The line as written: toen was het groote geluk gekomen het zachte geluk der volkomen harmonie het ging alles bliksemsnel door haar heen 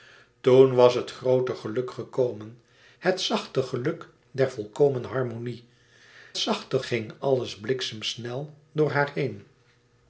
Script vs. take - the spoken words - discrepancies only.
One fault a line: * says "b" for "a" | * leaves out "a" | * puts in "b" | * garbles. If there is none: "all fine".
* says "zachte" for "het"